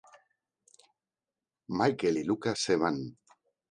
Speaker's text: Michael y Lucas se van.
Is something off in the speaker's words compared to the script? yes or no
no